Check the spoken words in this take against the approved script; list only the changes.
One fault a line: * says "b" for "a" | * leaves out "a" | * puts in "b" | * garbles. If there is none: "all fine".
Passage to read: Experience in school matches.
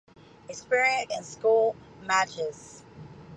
all fine